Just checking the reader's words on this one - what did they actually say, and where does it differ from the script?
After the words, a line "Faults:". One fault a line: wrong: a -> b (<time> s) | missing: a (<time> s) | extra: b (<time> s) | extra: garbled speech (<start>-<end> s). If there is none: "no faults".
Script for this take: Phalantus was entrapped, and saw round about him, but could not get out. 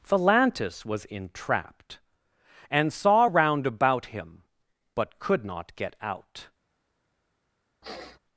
Phalantus was entrapped, and saw round about him, but could not get out.
Faults:
no faults